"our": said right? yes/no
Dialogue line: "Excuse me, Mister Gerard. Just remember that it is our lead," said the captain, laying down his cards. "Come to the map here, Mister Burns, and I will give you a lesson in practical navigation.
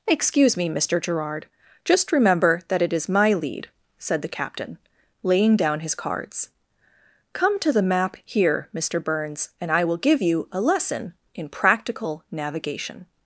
no